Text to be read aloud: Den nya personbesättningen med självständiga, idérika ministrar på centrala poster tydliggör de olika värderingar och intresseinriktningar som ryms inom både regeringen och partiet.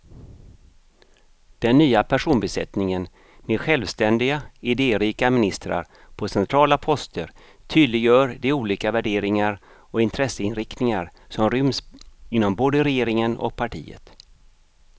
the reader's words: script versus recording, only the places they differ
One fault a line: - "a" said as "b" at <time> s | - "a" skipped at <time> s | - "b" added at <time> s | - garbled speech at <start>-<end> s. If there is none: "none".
none